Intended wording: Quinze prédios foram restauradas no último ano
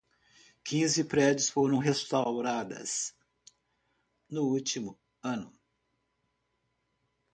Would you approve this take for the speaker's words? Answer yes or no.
yes